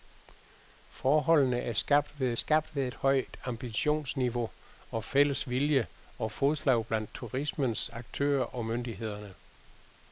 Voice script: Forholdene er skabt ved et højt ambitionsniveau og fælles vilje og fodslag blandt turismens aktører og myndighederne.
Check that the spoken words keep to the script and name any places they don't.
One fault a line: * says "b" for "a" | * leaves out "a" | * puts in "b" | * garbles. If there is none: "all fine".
* puts in "skabt ved"